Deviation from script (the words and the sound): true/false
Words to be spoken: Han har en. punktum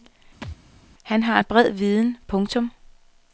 true